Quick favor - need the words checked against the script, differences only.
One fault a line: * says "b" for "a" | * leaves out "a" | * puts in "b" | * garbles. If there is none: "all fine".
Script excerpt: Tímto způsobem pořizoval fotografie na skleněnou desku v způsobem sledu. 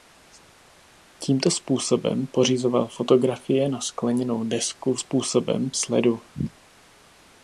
all fine